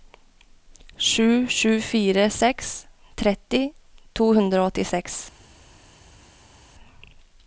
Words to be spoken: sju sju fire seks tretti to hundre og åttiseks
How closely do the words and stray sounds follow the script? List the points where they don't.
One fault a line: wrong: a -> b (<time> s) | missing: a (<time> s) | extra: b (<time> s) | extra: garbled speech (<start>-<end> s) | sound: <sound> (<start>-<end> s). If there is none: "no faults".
no faults